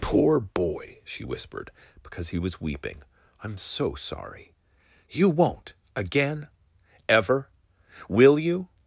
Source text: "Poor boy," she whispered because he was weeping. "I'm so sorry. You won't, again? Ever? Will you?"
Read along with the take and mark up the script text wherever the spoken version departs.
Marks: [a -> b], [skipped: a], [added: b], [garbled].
"Poor boy," she whispered because he was weeping. "I'm so sorry. You won't, again? Ever? Will you?"